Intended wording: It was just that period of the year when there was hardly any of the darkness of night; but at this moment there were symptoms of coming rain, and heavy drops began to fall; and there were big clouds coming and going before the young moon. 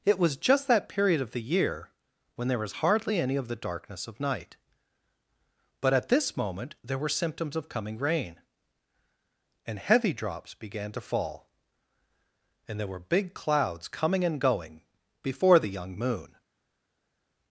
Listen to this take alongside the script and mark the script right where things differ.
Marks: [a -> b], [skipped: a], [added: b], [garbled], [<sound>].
It was just that period of the year when there was hardly any of the darkness of night; but at this moment there were symptoms of coming rain, and heavy drops began to fall; and there were big clouds coming and going before the young moon.